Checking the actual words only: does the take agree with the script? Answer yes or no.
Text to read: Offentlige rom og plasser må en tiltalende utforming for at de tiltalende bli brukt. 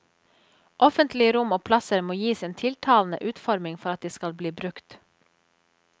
no